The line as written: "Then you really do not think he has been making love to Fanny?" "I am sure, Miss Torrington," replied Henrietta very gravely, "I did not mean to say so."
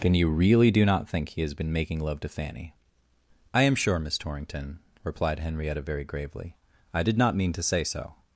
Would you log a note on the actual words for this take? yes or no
no